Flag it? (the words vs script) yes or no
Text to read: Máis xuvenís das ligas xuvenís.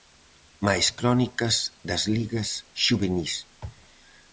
yes